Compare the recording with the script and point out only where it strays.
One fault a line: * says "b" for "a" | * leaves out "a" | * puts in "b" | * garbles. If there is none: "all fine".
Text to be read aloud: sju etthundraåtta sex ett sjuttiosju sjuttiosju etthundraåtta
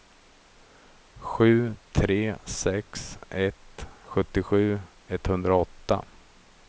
* says "tre" for "etthundraåtta"
* leaves out "sjuttiosju"